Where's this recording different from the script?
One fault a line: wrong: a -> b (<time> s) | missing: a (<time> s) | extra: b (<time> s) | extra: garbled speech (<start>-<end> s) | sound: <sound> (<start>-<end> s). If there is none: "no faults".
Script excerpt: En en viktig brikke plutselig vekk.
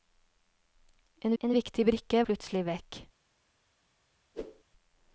sound: whoosh (4.3-4.6 s)